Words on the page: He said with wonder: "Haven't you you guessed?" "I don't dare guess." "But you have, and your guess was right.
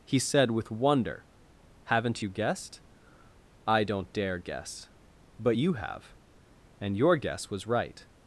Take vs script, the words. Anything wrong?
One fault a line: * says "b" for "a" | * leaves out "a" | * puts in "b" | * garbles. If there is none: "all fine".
* leaves out "you"